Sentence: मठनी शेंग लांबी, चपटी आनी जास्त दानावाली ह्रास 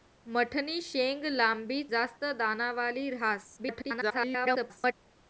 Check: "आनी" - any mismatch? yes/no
yes